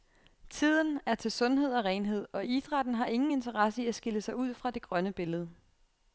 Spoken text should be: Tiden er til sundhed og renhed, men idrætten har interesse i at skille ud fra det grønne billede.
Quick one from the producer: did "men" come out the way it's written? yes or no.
no